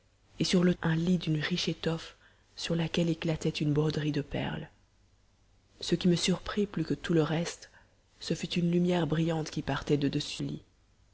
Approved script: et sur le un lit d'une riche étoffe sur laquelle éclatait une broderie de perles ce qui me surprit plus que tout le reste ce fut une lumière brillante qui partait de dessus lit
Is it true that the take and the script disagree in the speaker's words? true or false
false